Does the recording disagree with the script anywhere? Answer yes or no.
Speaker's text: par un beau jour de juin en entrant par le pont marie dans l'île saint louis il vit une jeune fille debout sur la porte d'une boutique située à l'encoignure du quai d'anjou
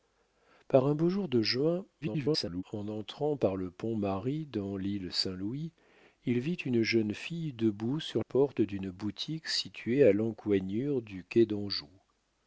yes